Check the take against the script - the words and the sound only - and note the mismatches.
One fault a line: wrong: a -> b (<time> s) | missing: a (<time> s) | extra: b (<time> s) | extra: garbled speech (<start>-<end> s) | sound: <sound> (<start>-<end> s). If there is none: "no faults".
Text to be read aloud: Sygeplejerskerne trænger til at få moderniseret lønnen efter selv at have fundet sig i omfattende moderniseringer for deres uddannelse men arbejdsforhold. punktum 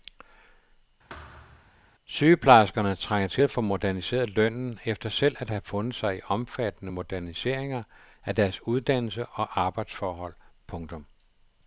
sound: thud (1.1-1.7 s)
wrong: for -> af (8.2 s)
wrong: men -> og (9.3 s)